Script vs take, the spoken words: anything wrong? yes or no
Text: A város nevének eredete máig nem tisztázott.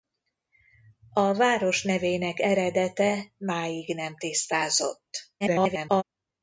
yes